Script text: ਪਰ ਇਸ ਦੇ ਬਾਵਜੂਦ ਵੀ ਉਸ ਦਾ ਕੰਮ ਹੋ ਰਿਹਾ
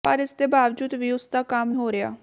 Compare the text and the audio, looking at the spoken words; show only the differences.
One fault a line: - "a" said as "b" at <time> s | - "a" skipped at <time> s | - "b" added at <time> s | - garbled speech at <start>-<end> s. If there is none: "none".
none